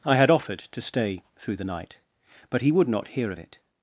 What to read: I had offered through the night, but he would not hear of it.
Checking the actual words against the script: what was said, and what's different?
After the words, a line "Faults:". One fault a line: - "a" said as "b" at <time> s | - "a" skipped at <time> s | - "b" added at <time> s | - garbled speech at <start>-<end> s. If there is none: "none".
I had offered to stay through the night, but he would not hear of it.
Faults:
- "to stay" added at 0.7 s